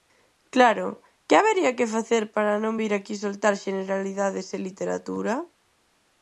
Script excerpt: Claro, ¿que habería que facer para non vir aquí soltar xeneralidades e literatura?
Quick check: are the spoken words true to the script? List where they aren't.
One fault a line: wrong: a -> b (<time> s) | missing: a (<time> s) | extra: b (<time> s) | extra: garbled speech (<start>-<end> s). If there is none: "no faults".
no faults